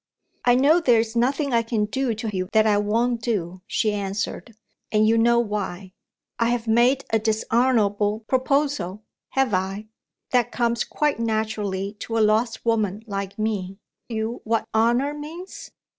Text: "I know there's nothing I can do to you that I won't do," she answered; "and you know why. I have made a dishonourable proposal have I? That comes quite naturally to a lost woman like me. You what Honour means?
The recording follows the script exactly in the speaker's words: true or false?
true